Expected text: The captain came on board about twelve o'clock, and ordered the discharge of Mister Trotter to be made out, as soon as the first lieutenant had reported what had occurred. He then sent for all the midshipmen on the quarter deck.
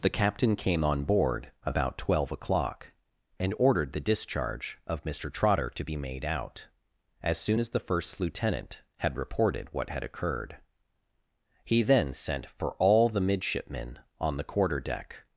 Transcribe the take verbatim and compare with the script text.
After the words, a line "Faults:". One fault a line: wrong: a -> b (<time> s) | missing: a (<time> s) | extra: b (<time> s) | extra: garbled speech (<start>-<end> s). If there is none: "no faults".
The captain came on board about twelve o'clock, and ordered the discharge of Mister Trotter to be made out, as soon as the first lieutenant had reported what had occurred. He then sent for all the midshipmen on the quarter deck.
Faults:
no faults